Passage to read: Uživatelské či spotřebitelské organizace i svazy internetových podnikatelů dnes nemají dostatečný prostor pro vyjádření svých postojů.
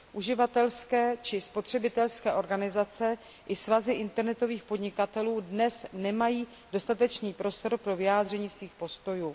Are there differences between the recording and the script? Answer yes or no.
no